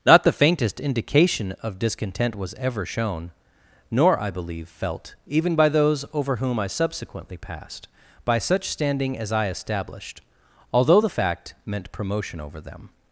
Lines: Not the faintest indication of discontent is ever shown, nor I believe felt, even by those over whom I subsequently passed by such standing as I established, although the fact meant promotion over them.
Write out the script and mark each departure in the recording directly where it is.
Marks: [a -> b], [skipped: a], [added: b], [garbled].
Not the faintest indication of discontent [is -> was] ever shown, nor I believe felt, even by those over whom I subsequently passed by such standing as I established, although the fact meant promotion over them.